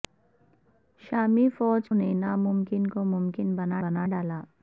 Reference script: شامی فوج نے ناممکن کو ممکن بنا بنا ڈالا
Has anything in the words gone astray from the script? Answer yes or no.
no